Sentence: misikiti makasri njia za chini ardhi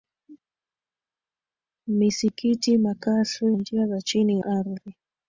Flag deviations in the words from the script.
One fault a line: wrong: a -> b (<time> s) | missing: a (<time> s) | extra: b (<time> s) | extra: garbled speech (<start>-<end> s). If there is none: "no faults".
no faults